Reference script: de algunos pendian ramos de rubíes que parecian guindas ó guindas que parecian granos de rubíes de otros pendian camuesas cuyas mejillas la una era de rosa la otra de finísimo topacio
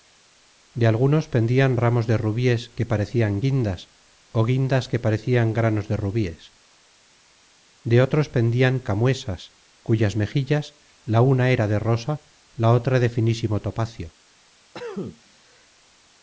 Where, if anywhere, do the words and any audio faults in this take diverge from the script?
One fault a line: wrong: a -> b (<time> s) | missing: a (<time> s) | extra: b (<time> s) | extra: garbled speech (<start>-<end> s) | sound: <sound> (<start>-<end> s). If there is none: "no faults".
sound: cough (14.7-15.7 s)